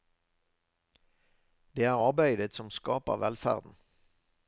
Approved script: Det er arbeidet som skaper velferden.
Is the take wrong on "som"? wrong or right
right